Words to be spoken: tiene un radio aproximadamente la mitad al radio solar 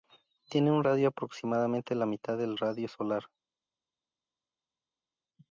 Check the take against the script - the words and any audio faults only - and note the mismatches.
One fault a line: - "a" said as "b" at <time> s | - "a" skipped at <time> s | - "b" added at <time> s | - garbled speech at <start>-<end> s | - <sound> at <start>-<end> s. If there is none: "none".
- "al" said as "del" at 2.4 s